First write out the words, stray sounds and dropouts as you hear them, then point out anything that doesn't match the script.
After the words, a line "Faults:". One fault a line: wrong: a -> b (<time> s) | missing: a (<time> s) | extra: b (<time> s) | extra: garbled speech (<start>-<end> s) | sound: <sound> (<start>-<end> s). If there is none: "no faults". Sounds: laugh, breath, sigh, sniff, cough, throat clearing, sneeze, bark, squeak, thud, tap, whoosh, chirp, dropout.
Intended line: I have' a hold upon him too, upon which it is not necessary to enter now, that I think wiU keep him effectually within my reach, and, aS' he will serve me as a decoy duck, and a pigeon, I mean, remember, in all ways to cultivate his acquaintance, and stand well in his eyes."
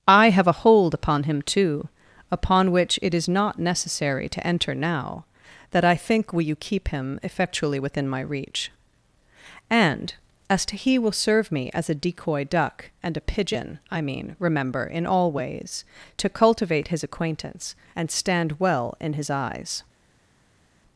I have' a hold upon him too, upon which it is not necessary to enter now, that I think will you keep him effectually within my reach, and, aS' to he will serve me as a decoy duck, and a pigeon, I mean, remember, in all ways to cultivate his acquaintance, and stand well in his eyes."
Faults:
wrong: wiU -> will you (6.3 s)
extra: to (10.7 s)